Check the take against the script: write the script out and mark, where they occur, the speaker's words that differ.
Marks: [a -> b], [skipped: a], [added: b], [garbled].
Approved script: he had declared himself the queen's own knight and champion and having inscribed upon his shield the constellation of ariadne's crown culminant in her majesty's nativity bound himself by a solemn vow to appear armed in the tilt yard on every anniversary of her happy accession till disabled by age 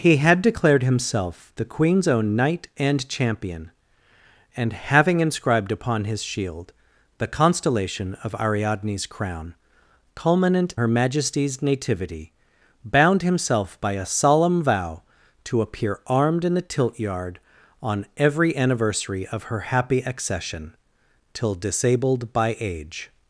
he had declared himself the queen's own knight and champion and having inscribed upon his shield the constellation of ariadne's crown culminant [skipped: in] her majesty's nativity bound himself by a solemn vow to appear armed in the tilt yard on every anniversary of her happy accession till disabled by age